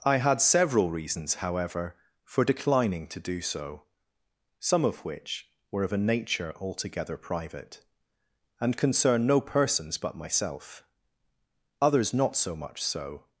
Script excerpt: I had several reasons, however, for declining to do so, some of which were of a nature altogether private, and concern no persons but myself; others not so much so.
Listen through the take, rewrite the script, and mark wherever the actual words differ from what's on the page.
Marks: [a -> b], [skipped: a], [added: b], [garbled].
I had several reasons, however, for declining to do so, some of which were of a nature altogether private, and concern no persons but myself; others not so much so.